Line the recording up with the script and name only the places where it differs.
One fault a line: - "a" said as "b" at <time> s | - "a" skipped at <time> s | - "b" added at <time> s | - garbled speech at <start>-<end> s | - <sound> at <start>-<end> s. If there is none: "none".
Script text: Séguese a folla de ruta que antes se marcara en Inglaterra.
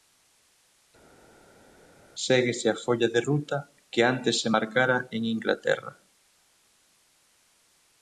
none